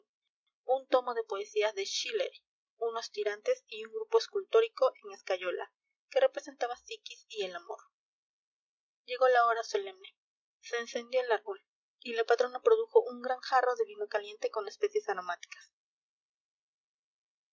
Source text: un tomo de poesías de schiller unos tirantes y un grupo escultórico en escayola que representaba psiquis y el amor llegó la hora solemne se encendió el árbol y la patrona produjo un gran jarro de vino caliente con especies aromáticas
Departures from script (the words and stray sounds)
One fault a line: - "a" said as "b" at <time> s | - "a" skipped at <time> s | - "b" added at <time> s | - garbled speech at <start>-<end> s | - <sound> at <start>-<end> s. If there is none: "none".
none